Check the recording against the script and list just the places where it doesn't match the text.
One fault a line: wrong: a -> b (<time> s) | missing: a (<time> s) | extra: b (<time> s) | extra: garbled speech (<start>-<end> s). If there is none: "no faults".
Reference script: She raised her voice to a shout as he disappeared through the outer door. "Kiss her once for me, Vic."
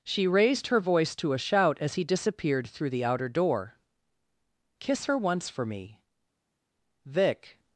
no faults